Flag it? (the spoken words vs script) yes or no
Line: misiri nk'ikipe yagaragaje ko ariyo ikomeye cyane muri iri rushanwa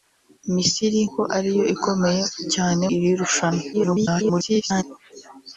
yes